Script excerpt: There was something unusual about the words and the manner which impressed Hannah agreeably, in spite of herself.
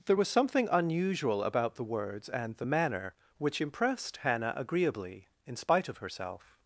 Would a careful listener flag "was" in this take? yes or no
no